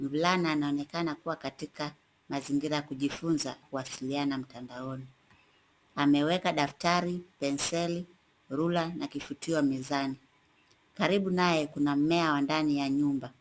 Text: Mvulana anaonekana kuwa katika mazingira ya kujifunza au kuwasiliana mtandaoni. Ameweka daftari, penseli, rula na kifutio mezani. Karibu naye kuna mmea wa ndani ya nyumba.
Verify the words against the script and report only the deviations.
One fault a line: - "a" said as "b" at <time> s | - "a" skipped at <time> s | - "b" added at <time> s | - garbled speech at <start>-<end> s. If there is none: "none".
- "au" skipped at 3.5 s